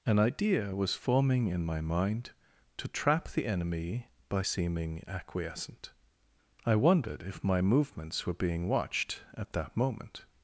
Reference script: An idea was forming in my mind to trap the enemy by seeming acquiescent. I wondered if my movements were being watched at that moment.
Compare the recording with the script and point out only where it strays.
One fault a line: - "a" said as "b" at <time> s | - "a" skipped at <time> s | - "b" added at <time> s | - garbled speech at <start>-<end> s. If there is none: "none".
none